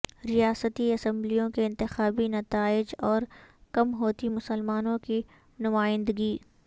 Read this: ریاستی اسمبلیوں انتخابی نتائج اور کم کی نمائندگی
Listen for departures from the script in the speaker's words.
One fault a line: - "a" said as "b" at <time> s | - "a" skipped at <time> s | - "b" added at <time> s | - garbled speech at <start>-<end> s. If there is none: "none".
- "کے" added at 1.5 s
- "ہوتی مسلمانوں" added at 3.9 s